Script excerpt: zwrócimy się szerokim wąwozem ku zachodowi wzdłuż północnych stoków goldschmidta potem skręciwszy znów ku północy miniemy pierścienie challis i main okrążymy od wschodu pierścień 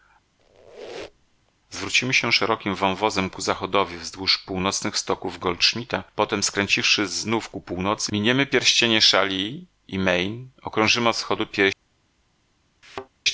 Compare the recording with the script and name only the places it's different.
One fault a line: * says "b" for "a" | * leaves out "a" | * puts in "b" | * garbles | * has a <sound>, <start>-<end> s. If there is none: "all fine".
* has a squeak, 0.4-1.5 s
* has a thud, 12.8-13.1 s